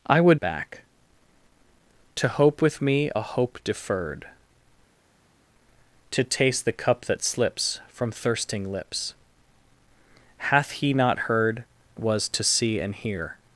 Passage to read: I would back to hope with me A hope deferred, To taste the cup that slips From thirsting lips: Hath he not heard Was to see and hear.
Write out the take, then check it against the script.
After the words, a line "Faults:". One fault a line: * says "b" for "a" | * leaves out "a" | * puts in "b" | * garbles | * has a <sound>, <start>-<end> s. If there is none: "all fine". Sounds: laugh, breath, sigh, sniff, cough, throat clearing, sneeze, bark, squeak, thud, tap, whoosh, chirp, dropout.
I would back to hope with me A hope deferred, To taste the cup that slips From thirsting lips: Hath he not heard Was to see and hear.
Faults:
all fine